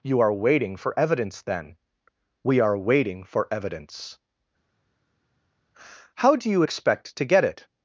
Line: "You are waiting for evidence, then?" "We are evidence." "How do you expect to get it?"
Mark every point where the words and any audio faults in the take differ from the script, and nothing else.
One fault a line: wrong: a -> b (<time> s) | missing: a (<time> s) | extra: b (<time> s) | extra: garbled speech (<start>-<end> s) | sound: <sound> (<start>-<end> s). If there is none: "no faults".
extra: waiting for (2.8 s)